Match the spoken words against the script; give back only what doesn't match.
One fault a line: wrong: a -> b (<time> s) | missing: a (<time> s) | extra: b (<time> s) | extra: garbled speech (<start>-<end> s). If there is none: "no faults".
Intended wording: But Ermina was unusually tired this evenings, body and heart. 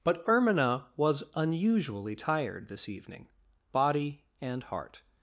wrong: evenings -> evening (2.9 s)